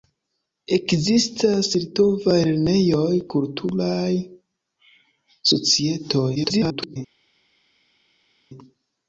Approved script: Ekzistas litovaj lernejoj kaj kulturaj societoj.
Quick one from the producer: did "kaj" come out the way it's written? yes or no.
no